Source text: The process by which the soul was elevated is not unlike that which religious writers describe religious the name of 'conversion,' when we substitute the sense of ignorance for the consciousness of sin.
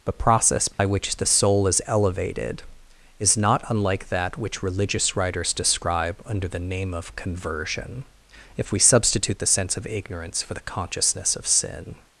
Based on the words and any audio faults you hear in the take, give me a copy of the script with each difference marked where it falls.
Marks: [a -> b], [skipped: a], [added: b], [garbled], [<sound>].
The process by [dropout] which the soul [was -> is] elevated is not unlike that which religious writers describe [religious -> under] the name of 'conversion,' [when -> if] we substitute the sense of ignorance for the consciousness of sin.